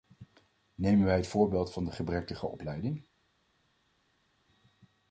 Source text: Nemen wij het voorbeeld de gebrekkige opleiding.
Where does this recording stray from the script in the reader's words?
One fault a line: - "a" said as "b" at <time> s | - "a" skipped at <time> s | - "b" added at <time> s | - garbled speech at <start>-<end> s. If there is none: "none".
- "van" added at 1.7 s